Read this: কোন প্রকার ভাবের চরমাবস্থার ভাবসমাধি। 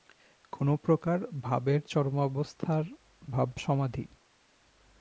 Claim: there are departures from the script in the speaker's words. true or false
false